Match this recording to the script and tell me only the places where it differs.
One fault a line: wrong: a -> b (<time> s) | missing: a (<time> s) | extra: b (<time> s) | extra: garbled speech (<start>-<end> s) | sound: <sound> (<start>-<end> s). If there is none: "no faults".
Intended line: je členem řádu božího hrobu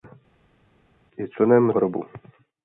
missing: řádu božího (1.7 s)